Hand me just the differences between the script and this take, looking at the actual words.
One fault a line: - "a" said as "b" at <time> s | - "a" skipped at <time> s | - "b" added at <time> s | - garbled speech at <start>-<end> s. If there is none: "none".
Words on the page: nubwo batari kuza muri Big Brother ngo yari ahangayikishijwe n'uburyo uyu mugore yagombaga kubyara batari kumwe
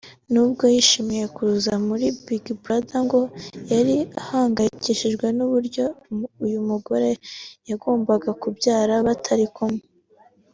- "batari" said as "yishimiye" at 0.7 s